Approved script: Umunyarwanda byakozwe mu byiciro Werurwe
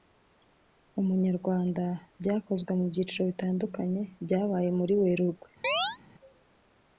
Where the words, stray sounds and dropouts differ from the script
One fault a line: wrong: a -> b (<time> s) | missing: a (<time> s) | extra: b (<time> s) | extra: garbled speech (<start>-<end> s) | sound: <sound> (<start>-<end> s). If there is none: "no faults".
extra: bitandukanye byabaye muri (3.3 s)
sound: chirp (5.6-6.0 s)